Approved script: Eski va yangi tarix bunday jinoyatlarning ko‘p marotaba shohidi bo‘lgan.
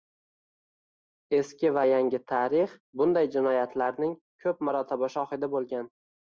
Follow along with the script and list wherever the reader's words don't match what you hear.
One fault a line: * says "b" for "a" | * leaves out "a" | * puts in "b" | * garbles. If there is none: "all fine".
all fine